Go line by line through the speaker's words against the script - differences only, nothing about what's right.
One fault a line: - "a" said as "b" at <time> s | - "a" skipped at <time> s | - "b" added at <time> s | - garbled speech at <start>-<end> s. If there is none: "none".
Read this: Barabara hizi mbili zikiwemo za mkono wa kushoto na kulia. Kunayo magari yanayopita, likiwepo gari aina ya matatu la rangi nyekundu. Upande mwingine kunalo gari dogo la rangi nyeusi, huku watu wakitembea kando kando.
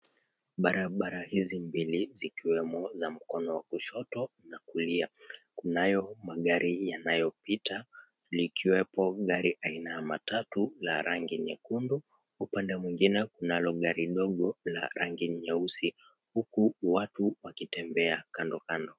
none